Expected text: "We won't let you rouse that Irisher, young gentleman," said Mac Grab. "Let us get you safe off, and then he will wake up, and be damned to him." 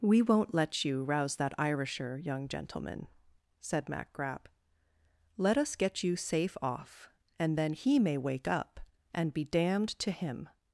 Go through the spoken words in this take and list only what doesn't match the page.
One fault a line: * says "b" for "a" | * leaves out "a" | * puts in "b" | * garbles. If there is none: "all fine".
* says "may" for "will"